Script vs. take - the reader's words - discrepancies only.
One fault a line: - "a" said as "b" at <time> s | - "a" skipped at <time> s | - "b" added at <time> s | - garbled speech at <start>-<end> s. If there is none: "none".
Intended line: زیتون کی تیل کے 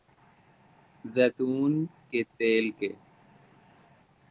- "کی" said as "کے" at 2.1 s